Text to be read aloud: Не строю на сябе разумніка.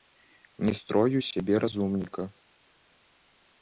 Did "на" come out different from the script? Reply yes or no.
yes